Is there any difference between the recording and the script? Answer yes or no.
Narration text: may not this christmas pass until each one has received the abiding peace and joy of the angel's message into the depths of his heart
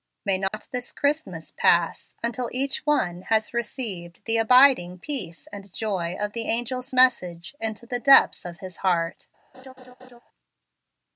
no